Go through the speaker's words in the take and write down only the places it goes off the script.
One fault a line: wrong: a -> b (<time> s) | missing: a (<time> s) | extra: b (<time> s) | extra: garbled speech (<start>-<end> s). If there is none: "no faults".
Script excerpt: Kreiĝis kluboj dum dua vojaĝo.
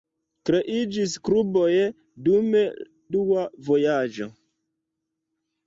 no faults